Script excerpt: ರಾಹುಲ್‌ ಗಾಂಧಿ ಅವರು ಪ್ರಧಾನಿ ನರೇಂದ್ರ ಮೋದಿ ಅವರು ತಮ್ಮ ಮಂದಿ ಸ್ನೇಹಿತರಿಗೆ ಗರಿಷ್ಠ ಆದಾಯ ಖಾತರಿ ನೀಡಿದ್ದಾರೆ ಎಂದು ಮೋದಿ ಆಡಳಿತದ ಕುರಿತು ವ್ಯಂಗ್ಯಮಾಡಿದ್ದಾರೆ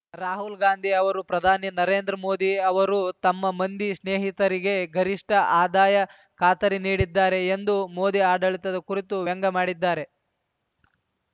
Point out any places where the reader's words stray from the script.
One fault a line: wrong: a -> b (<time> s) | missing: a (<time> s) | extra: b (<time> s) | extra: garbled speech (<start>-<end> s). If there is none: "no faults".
no faults